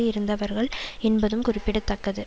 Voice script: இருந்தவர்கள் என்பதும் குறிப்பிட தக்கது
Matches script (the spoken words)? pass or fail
pass